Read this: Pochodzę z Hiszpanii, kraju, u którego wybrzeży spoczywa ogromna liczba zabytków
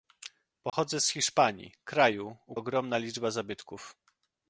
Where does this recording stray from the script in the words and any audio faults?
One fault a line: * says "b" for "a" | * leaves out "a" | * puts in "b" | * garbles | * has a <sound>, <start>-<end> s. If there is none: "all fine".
* has a dropout, 0.7-0.7 s
* leaves out "którego wybrzeży spoczywa"